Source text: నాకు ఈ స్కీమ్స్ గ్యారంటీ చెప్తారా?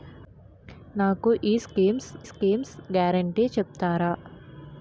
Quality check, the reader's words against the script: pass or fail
fail